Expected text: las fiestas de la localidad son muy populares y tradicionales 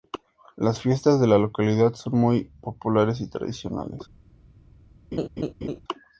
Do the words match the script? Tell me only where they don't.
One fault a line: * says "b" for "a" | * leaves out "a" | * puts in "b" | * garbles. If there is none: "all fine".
all fine